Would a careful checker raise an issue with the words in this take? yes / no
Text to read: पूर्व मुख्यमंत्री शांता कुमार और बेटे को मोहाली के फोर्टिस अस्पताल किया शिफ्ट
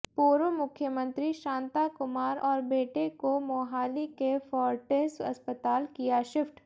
no